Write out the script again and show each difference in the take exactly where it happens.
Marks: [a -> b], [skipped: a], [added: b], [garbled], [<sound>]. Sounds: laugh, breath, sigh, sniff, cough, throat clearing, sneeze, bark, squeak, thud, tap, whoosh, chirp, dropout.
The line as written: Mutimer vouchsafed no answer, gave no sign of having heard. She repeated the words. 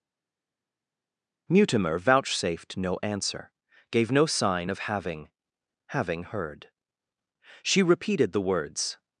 Mutimer vouchsafed no answer, gave no sign of having [added: having] heard. She repeated the words.